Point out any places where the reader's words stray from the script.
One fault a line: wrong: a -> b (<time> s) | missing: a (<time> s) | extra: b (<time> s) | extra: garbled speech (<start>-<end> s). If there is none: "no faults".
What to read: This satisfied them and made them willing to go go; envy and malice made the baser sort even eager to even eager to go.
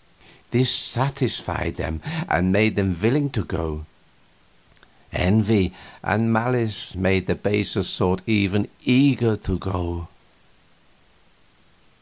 missing: go (3.9 s)
missing: even eager to (9.6 s)